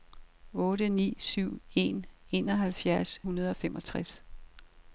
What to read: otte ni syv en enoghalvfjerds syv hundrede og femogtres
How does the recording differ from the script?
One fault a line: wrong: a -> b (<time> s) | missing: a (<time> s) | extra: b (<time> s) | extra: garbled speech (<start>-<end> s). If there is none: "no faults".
missing: syv (3.2 s)